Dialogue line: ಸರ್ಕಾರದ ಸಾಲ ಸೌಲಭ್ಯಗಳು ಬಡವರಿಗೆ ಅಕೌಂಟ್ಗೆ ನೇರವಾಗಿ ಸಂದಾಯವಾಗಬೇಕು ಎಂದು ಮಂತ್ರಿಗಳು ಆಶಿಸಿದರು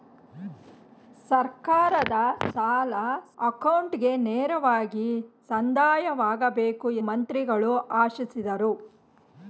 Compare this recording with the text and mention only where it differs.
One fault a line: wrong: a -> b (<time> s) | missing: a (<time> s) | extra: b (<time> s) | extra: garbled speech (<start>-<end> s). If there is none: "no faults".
missing: ಸೌಲಭ್ಯಗಳು ಬಡವರಿಗೆ (2.9 s)
missing: ಎಂದು (6.9 s)